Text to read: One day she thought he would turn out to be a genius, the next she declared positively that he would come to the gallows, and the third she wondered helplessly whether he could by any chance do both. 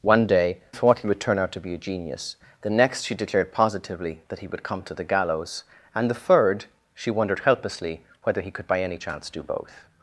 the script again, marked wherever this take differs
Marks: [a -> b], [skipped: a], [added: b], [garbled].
One day [skipped: she] thought he would turn out to be a genius, the next she declared positively that he would come to the gallows, and the third she wondered helplessly whether he could by any chance do both.